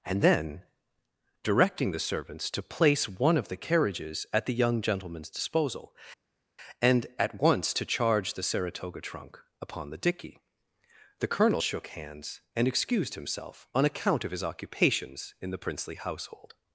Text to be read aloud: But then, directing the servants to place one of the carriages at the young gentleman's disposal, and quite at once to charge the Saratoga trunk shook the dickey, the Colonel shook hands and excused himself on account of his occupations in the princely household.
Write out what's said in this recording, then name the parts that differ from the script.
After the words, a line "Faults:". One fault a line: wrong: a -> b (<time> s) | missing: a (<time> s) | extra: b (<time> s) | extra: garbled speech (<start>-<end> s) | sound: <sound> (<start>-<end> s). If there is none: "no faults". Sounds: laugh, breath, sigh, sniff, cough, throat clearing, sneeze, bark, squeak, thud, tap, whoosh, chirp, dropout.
And then, directing the servants to place one of the carriages at the young gentleman's disposal, and at once to charge the Saratoga trunk upon the dickey, the Colonel shook hands and excused himself on account of his occupations in the princely household.
Faults:
wrong: But -> And (0.1 s)
missing: quite (7.1 s)
wrong: shook -> upon (9.6 s)